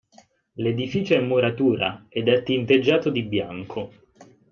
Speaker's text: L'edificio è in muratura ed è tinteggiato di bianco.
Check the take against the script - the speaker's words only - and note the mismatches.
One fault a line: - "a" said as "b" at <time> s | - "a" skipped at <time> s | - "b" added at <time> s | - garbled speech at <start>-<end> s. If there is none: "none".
none